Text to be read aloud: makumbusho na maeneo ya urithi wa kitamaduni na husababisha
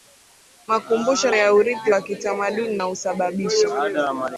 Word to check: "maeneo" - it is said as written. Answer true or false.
false